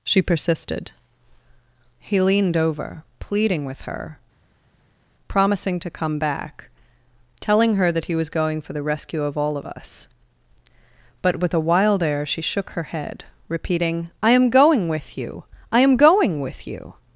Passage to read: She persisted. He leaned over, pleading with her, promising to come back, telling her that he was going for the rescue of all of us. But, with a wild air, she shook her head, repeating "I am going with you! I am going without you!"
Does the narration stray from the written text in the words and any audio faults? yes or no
yes